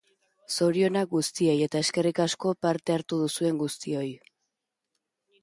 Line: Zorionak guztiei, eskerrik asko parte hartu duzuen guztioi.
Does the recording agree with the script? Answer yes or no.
no